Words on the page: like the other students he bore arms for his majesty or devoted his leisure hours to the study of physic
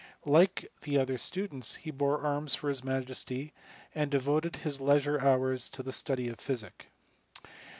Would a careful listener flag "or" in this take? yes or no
yes